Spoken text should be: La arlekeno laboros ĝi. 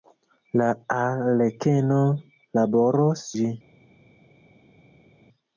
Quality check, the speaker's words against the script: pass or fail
pass